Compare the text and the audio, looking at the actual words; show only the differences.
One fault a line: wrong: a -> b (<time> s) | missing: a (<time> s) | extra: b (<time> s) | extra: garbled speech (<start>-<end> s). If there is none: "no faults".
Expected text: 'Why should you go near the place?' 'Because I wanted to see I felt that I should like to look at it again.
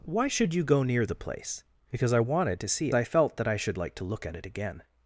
no faults